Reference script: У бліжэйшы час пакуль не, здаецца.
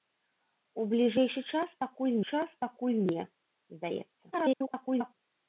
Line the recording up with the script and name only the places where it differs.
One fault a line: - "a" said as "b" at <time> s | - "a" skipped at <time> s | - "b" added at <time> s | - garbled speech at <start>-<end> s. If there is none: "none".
- "час пакуль" added at 2.3 s
- garbled speech at 4.3-5.1 s